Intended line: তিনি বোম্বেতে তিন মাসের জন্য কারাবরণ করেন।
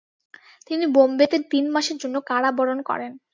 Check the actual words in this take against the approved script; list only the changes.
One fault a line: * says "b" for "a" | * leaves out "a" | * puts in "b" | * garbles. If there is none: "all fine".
all fine